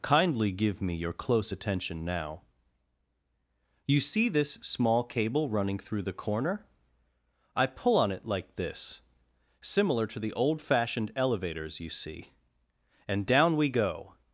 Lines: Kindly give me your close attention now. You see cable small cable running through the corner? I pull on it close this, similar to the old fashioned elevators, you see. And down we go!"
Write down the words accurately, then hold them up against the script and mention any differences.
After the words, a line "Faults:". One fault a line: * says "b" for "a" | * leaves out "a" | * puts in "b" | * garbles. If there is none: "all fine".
Kindly give me your close attention now. You see this small cable running through the corner? I pull on it like this, similar to the old fashioned elevators, you see. And down we go!"
Faults:
* says "this" for "cable"
* says "like" for "close"